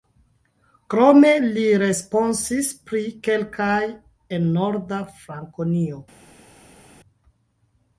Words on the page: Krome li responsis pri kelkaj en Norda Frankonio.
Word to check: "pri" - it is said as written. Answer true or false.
true